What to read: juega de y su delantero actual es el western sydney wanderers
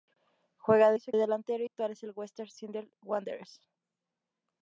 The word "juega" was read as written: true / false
true